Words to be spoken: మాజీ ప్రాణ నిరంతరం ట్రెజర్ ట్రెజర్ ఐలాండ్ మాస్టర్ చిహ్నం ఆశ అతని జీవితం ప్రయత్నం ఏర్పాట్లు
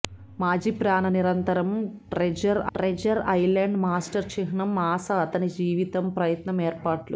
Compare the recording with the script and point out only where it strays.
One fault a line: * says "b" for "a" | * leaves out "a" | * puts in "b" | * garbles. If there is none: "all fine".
all fine